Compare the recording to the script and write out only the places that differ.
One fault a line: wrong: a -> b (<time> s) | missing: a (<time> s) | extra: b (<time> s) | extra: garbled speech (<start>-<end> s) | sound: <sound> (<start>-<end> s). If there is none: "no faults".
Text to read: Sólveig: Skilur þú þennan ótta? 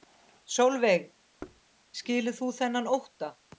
sound: thud (1.4-1.6 s)